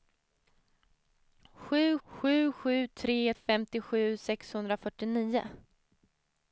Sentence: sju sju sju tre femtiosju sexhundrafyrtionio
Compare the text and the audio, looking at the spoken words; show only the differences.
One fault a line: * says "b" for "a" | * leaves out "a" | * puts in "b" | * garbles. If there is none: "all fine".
all fine